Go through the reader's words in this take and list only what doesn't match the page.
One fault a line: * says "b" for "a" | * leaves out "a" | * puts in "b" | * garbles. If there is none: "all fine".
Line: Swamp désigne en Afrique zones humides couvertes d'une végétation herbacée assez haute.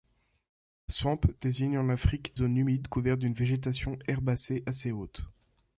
all fine